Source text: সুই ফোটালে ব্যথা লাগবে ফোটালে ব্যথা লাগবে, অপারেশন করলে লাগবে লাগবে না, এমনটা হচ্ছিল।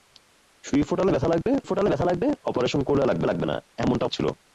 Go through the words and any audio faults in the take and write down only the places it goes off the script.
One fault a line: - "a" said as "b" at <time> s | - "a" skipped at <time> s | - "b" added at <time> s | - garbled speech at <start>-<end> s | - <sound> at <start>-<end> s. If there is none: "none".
- dropout at 1.4-1.5 s